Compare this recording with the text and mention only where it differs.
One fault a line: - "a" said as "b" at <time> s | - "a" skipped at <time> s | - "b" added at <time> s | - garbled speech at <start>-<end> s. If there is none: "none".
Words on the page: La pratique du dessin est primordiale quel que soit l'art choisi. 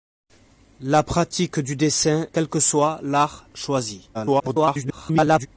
- "est primordiale" skipped at 2.2 s
- garbled speech at 4.1-5.5 s